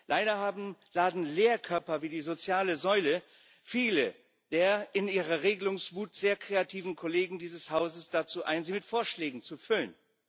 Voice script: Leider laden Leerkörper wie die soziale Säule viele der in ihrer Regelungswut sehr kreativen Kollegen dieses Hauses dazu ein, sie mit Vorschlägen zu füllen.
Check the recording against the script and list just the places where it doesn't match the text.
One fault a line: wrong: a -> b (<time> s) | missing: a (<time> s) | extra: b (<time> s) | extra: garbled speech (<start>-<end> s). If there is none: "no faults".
no faults